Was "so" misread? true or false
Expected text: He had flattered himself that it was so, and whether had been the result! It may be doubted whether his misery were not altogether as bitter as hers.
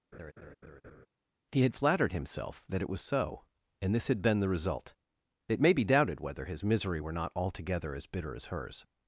false